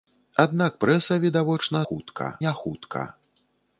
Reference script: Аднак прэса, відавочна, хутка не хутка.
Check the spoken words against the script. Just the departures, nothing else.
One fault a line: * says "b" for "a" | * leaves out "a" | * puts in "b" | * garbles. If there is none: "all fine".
all fine